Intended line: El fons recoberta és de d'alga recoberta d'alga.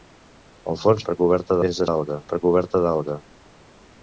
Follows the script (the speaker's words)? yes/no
yes